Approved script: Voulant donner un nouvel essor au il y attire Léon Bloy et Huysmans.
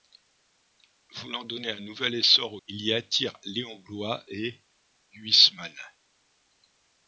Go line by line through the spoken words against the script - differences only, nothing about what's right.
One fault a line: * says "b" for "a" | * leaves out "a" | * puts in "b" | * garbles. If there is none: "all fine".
all fine